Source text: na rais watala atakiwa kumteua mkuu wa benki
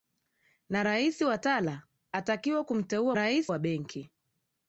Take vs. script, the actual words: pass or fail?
fail